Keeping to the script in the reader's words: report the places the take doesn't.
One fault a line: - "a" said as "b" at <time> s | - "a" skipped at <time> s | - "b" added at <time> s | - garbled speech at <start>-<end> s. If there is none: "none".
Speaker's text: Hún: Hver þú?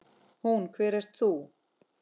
- "ert" added at 1.0 s